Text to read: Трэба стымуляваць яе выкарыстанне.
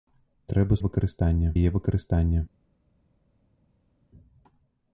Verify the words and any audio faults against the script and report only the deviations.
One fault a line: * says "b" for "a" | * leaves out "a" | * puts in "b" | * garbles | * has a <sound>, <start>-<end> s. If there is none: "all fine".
* says "выкарыстанне" for "стымуляваць"